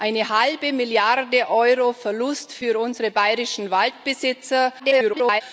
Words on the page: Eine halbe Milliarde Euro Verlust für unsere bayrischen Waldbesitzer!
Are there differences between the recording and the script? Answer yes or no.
yes